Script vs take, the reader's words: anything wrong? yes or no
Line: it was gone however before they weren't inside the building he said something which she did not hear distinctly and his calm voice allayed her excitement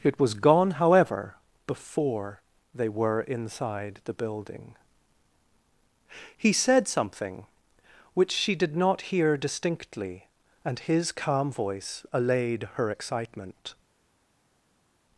yes